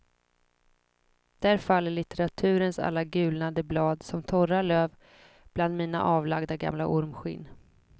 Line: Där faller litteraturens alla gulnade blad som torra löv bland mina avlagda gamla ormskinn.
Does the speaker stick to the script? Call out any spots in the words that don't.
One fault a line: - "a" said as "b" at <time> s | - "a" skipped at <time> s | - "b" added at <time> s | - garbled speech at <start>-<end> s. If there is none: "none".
none